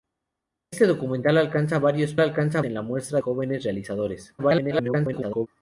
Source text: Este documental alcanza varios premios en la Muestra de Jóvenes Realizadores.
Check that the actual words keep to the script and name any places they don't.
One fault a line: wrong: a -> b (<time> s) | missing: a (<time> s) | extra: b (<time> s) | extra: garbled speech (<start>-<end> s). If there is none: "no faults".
wrong: premios -> alcanza (2.2 s)
missing: de (3.2 s)
extra: garbled speech (4.4-5.5 s)